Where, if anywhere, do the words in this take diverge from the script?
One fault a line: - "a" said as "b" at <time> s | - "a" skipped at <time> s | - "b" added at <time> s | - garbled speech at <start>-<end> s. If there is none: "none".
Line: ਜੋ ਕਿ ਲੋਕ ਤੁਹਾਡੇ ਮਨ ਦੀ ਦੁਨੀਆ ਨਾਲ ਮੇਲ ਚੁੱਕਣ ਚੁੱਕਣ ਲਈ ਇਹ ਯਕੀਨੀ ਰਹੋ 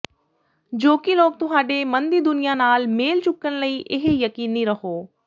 - "ਚੁੱਕਣ" skipped at 3.6 s